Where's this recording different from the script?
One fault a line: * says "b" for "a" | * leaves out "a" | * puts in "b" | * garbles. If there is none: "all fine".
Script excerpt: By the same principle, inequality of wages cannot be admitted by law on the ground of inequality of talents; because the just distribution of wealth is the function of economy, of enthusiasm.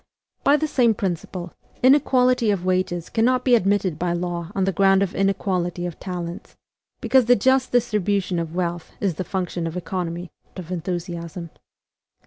all fine